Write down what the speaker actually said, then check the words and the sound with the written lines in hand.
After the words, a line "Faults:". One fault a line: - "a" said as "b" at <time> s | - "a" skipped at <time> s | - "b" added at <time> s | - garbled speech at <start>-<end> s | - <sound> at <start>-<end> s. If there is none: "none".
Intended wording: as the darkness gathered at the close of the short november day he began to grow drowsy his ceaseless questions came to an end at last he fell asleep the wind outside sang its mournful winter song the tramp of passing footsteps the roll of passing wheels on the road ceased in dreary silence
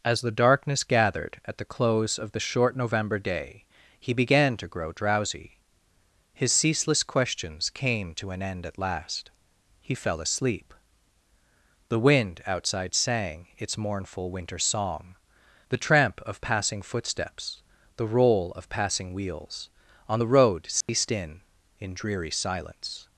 as the darkness gathered at the close of the short november day he began to grow drowsy his ceaseless questions came to an end at last he fell asleep the wind outside sang its mournful winter song the tramp of passing footsteps the roll of passing wheels on the road ceased in in dreary silence
Faults:
- dropout at 20.8-20.9 s
- "in" added at 21.8 s